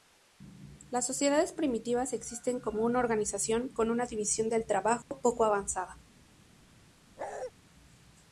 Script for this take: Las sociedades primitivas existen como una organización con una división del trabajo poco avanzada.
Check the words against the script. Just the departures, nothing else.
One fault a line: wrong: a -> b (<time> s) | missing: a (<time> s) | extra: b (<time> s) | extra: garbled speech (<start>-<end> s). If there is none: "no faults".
no faults